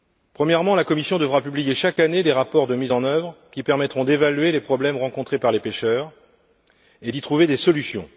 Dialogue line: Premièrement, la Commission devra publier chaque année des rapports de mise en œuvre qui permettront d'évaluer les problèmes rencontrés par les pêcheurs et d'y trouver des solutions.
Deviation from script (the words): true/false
false